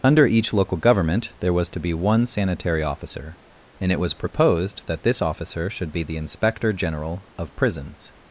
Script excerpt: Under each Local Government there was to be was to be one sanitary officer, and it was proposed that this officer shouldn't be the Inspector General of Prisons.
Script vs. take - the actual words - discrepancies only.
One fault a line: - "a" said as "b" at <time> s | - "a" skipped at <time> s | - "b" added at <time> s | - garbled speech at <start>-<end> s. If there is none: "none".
- "was to be" skipped at 1.9 s
- "shouldn't" said as "should" at 5.7 s